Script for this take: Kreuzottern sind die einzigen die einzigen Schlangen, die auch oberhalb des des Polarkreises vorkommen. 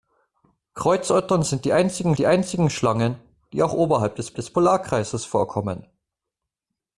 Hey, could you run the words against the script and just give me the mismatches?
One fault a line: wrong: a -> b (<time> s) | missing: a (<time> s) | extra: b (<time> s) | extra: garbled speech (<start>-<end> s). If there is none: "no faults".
no faults